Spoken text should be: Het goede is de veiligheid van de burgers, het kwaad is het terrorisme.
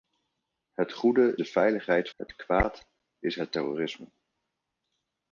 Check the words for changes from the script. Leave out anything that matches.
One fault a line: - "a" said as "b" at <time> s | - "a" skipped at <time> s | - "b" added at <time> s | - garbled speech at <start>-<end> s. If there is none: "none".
- "is" skipped at 1.4 s
- "van de burgers" skipped at 2.1 s